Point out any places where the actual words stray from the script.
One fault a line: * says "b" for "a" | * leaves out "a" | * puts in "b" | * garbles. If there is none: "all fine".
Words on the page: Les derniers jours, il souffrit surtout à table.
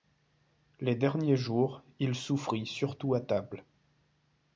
all fine